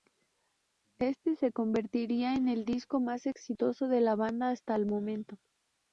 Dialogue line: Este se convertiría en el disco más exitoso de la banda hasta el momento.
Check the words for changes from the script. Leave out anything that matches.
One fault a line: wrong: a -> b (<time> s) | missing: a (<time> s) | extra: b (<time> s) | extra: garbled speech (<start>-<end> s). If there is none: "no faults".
no faults